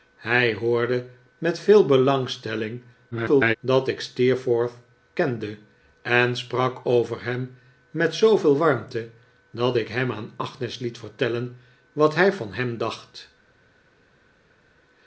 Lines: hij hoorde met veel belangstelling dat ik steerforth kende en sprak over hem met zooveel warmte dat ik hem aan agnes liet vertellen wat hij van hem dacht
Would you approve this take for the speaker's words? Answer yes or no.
no